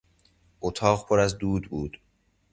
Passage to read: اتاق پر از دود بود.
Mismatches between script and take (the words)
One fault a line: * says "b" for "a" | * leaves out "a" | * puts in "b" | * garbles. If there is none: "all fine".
all fine